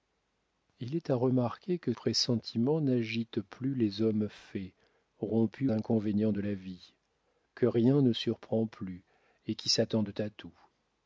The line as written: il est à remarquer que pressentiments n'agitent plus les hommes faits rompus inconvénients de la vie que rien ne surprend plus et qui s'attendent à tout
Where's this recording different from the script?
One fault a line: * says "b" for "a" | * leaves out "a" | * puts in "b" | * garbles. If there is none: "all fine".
all fine